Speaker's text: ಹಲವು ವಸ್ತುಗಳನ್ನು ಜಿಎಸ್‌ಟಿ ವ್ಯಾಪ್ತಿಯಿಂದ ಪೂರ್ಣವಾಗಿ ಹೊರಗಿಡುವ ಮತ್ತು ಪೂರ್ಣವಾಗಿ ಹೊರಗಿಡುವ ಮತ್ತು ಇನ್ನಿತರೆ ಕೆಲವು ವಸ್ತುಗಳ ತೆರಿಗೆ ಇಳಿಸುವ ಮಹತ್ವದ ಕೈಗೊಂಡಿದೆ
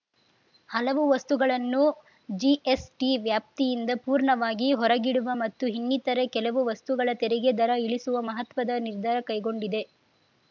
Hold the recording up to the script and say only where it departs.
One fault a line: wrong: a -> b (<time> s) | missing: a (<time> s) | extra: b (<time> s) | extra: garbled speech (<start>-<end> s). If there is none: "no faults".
missing: ಪೂರ್ಣವಾಗಿ ಹೊರಗಿಡುವ ಮತ್ತು (5.7 s)
extra: ದರ (7.6 s)
extra: ನಿರ್ಧಾರ (8.8 s)